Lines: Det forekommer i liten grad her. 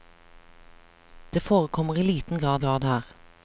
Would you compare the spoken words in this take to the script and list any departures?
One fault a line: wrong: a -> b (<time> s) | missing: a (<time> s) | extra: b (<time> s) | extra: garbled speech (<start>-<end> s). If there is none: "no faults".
extra: grad (2.6 s)